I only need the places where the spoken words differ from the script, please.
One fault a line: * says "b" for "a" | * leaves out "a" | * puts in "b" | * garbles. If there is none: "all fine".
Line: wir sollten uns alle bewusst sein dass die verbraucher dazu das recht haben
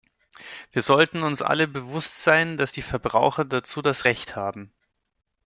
all fine